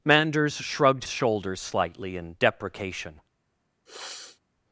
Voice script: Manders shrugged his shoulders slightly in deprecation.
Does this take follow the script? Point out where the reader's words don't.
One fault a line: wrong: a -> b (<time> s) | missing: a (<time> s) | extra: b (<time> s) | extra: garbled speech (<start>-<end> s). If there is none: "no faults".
missing: his (1.1 s)